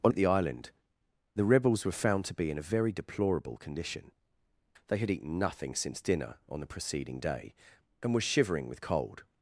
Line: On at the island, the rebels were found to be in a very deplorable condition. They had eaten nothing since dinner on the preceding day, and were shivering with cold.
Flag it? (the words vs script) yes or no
no